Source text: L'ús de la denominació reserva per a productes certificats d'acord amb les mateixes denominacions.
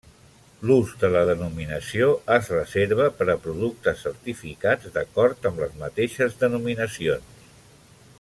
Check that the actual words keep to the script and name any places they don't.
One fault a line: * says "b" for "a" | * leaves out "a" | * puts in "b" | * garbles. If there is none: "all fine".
* puts in "es"